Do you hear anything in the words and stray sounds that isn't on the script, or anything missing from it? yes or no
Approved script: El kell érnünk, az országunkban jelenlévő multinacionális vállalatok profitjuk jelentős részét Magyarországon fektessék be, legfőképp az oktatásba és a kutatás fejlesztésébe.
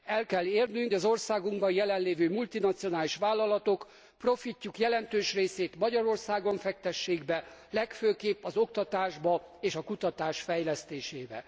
no